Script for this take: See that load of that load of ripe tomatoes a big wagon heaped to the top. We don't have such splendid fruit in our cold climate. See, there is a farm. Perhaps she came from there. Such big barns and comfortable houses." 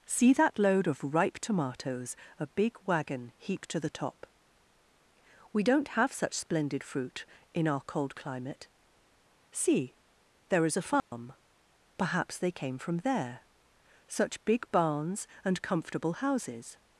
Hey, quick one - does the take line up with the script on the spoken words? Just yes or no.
no